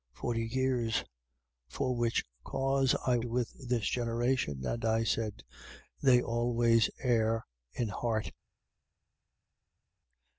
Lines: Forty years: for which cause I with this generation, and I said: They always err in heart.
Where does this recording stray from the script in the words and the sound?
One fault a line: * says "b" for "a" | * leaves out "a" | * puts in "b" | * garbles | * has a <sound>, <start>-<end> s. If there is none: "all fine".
all fine